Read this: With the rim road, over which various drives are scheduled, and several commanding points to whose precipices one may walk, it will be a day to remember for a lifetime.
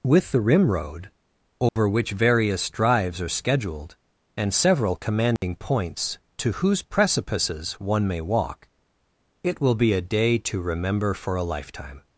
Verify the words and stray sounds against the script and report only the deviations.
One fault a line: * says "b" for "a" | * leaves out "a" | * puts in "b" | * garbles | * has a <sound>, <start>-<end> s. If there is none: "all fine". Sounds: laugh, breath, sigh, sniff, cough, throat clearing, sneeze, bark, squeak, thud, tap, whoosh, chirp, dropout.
* has a dropout, 1.7-1.8 s
* has a dropout, 5.4-5.4 s